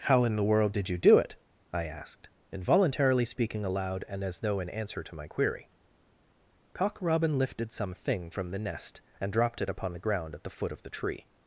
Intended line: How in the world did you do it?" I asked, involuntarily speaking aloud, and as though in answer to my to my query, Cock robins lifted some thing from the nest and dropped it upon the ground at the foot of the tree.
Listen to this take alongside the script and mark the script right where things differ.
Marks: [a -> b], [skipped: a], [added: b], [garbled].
How in the world did you do it?" I asked, involuntarily speaking aloud, and as though in answer to my [skipped: to my] query, Cock [robins -> robin] lifted some thing from the nest and dropped it upon the ground at the foot of the tree.